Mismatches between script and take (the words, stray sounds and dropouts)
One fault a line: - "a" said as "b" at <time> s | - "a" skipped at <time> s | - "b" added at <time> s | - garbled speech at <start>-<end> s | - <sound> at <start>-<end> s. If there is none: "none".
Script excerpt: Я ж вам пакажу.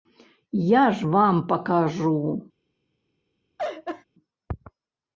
- laugh at 3.6-4.0 s